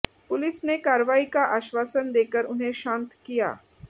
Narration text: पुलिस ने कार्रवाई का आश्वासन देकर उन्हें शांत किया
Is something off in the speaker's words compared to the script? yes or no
no